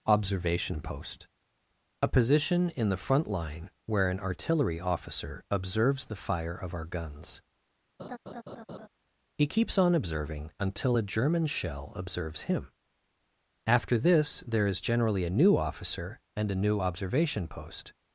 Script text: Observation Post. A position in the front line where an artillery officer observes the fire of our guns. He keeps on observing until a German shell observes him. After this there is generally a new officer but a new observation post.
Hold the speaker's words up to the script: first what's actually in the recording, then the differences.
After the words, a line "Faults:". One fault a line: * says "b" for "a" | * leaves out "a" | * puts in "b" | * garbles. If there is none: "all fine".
Observation Post. A position in the front line where an artillery officer observes the fire of our guns. He keeps on observing until a German shell observes him. After this there is generally a new officer and a new observation post.
Faults:
* says "and" for "but"